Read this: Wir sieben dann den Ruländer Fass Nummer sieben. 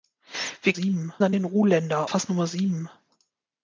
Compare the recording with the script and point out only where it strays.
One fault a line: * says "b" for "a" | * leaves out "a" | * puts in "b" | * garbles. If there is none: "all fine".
all fine